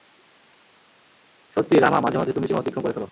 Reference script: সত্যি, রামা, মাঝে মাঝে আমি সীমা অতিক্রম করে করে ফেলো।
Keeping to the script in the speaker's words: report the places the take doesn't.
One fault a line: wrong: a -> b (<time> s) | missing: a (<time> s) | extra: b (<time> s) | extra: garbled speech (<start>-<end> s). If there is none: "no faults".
wrong: আমি -> তুমি (2.3 s)
missing: করে (2.9 s)